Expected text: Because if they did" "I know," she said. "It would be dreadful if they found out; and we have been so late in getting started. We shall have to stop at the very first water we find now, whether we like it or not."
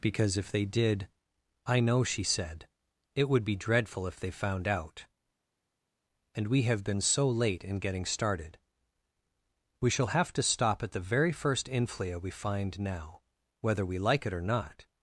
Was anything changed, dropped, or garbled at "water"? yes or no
yes